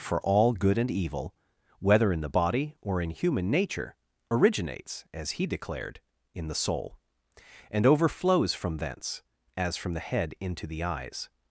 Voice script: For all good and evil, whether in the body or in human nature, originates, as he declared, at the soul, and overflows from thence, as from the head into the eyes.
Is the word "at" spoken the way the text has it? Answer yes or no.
no